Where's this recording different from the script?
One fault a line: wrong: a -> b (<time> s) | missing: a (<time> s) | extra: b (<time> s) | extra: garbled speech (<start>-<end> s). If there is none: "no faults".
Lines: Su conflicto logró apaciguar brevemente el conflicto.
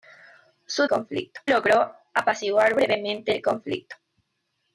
no faults